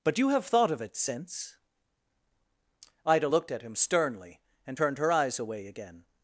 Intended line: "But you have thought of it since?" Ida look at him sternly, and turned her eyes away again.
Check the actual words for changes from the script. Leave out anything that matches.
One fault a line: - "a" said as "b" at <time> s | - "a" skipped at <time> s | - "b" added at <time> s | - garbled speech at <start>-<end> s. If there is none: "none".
- "look" said as "looked" at 3.2 s